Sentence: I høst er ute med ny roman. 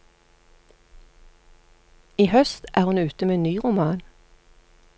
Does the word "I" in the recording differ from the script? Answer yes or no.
no